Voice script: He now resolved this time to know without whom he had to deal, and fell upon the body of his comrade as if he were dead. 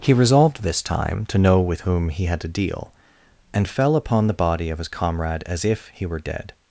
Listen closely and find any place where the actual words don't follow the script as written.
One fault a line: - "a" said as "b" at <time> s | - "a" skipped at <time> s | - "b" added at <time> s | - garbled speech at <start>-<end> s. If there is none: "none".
- "now" skipped at 0.1 s
- "without" said as "with" at 1.6 s